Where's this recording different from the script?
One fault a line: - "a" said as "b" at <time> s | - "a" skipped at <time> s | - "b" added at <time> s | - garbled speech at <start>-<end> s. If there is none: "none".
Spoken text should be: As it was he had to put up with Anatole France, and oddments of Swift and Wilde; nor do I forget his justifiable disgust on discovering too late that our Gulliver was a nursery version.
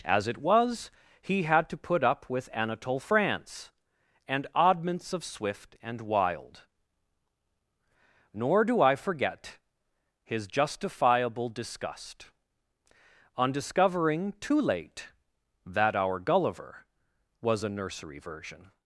none